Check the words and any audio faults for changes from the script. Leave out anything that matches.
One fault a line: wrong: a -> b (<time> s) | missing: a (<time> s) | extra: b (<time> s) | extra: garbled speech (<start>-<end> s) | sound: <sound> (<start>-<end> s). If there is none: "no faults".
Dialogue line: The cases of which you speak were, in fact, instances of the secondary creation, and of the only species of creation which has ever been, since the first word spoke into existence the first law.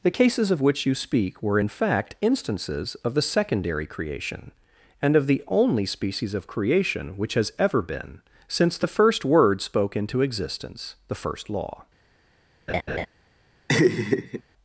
sound: laugh (12.7-13.1 s)
sound: laugh (13.7-14.4 s)